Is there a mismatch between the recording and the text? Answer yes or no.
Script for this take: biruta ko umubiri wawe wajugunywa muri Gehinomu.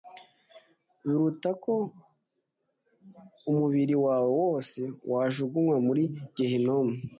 yes